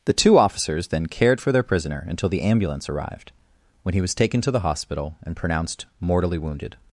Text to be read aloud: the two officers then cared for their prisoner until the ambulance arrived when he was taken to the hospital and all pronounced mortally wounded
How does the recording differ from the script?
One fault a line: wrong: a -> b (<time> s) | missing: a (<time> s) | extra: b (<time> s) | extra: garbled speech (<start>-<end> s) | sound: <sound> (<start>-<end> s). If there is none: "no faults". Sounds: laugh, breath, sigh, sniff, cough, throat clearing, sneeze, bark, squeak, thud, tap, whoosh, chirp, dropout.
missing: all (5.4 s)